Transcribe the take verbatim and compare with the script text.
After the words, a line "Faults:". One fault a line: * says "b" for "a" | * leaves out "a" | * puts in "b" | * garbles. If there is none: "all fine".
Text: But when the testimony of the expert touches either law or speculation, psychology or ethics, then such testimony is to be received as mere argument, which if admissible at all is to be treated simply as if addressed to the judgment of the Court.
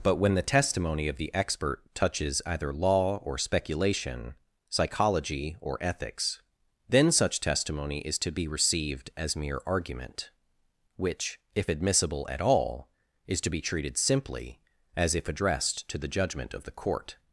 But when the testimony of the expert touches either law or speculation, psychology or ethics, then such testimony is to be received as mere argument, which if admissible at all is to be treated simply as if addressed to the judgment of the Court.
Faults:
all fine